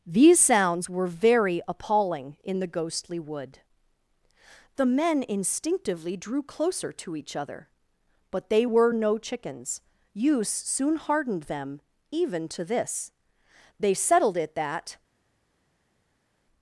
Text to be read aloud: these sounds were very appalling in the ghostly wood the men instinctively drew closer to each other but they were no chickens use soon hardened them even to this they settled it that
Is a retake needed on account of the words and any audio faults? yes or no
no